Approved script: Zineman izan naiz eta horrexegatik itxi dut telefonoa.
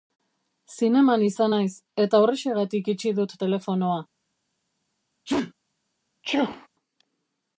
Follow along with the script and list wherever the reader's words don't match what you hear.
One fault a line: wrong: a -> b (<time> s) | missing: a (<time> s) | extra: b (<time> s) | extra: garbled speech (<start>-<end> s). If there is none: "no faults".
no faults